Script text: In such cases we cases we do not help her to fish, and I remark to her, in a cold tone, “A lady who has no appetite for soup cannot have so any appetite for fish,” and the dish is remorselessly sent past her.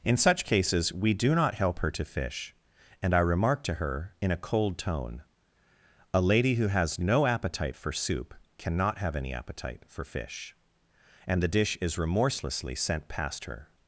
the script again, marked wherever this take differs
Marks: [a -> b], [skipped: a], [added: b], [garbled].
In such cases we [skipped: cases we] do not help her to fish, and I remark to her, in a cold tone, “A lady who has no appetite for soup cannot have [skipped: so] any appetite for fish,” and the dish is remorselessly sent past her.